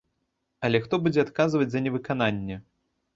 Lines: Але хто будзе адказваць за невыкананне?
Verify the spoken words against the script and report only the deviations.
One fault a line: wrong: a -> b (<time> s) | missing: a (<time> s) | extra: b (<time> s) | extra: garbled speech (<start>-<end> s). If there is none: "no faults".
no faults